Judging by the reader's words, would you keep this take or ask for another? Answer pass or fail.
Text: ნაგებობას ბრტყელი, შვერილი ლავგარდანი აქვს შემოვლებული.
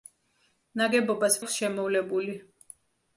fail